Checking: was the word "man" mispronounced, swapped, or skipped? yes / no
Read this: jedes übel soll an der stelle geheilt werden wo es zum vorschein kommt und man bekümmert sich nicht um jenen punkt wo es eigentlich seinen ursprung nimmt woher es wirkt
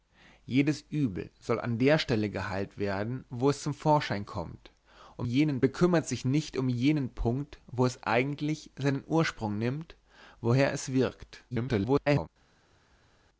yes